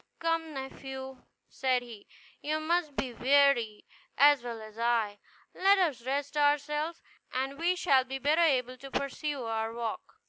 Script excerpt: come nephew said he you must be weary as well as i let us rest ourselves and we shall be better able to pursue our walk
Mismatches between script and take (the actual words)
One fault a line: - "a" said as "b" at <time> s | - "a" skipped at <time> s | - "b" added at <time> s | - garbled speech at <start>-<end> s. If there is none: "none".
none